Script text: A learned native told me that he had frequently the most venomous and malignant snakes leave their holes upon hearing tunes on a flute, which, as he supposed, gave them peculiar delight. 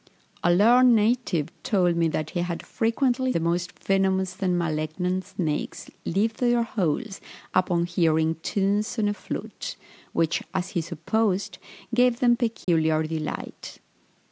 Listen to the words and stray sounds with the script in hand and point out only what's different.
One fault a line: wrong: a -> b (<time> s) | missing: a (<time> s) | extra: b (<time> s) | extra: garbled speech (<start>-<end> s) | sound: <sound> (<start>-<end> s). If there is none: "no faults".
sound: dropout (12.6-12.7 s)